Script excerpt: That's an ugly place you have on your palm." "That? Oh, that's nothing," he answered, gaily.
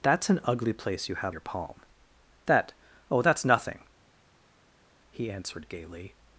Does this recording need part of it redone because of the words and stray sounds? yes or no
yes